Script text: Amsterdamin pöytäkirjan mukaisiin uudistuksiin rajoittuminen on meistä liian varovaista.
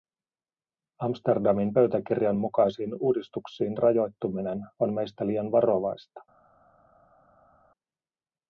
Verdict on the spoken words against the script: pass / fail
pass